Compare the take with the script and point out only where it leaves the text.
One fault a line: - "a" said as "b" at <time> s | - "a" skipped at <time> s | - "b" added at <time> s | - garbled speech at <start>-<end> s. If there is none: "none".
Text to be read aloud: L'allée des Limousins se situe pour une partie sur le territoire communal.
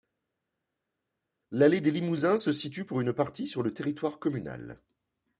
none